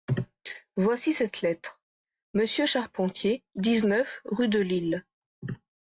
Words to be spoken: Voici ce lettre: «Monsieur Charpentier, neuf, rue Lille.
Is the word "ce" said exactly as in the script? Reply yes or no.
no